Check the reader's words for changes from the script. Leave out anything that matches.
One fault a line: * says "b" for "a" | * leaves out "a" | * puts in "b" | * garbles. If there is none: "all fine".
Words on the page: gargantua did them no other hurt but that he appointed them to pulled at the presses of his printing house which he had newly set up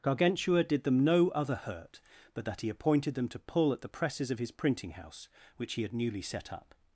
* says "pull" for "pulled"